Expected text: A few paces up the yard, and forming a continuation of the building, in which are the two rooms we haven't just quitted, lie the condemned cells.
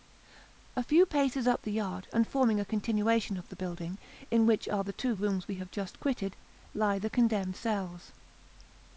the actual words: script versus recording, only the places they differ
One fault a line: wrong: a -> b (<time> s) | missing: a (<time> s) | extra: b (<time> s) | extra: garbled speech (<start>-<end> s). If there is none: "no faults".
wrong: haven't -> have (5.5 s)